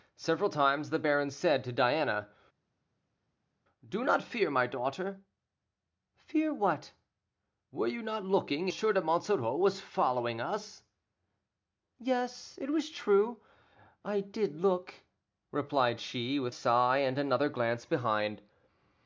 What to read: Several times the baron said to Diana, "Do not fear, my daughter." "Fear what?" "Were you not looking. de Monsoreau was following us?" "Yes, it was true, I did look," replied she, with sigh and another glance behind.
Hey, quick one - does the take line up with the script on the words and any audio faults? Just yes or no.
yes